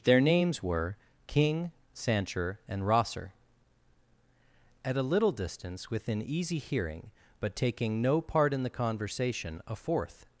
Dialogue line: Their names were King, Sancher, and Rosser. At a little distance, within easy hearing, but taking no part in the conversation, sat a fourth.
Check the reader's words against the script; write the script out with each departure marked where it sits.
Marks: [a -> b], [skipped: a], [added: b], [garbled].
Their names were King, Sancher, and Rosser. At a little distance, within easy hearing, but taking no part in the conversation, [skipped: sat] a fourth.